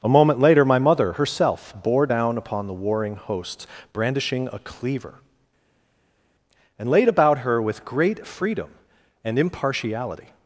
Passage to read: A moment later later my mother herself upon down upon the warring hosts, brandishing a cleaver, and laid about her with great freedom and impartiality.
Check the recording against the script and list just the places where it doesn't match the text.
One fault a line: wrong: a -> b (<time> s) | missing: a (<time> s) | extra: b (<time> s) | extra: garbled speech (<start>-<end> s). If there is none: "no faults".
missing: later (0.7 s)
wrong: upon -> bore (1.8 s)